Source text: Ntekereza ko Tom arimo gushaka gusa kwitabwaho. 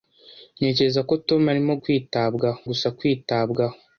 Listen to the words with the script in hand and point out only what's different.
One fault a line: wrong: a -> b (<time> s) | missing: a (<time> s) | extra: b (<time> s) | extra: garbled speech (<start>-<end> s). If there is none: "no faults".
wrong: gushaka -> kwitabwaho (1.8 s)